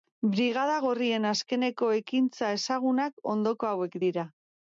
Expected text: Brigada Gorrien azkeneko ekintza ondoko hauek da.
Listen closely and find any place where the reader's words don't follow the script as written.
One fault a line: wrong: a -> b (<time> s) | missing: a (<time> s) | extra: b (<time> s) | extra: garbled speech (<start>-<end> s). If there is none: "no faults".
extra: ezagunak (2.6 s)
wrong: da -> dira (4.1 s)